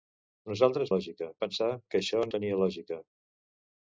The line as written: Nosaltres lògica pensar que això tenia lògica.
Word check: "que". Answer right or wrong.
right